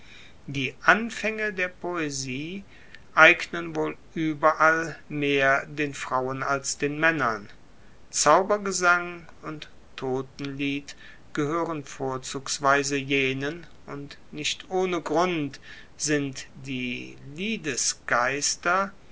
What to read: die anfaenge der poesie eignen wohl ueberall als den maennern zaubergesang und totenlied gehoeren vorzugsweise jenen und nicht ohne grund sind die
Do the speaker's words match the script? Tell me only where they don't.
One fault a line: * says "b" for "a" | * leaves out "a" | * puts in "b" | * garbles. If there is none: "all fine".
* puts in "mehr den frauen"